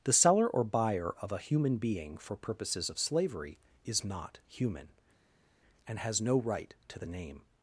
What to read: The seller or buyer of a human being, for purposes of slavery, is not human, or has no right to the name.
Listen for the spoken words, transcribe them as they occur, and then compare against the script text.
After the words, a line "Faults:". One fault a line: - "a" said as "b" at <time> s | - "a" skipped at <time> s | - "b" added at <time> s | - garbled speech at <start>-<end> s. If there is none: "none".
The seller or buyer of a human being, for purposes of slavery, is not human, and has no right to the name.
Faults:
- "or" said as "and" at 5.9 s